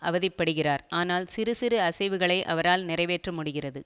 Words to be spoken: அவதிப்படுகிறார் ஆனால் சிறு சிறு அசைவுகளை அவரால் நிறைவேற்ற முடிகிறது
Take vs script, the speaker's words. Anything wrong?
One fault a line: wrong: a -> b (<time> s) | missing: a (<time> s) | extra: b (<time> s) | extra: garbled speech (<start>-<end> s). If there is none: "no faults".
no faults